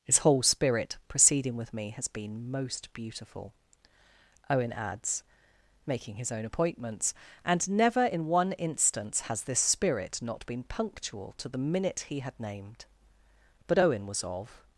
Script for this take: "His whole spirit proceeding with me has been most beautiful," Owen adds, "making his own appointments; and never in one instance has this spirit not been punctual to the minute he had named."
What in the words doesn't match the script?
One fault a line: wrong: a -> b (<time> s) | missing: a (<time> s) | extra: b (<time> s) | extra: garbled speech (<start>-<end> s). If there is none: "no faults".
extra: But Owen was of (13.7 s)